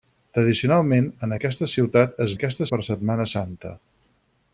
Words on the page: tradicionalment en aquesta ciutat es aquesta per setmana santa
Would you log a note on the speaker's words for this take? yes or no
no